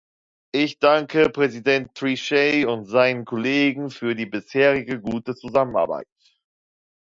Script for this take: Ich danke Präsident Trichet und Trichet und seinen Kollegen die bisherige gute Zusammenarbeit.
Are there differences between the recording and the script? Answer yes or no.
yes